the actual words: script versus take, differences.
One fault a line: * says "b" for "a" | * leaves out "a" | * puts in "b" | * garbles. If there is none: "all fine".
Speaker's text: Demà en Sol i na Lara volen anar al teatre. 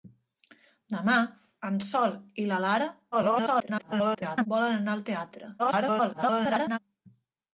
* garbles
* garbles